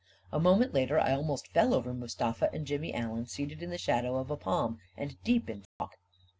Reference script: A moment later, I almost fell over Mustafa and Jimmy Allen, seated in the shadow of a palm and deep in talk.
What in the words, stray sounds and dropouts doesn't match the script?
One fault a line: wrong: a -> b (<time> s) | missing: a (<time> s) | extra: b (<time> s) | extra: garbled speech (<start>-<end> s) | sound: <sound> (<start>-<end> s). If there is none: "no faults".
sound: dropout (5.7-5.8 s)